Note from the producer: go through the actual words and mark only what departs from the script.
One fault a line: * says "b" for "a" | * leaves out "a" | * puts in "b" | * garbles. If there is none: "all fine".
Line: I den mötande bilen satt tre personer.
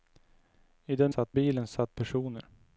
* says "satt" for "mötande"
* leaves out "tre"